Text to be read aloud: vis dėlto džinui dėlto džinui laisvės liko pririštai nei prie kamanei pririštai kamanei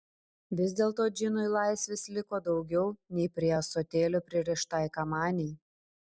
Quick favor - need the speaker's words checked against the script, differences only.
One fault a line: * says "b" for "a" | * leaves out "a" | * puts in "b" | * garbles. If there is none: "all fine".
* leaves out "dėlto džinui"
* says "daugiau" for "pririštai"
* says "ąsotėlio" for "kamanei"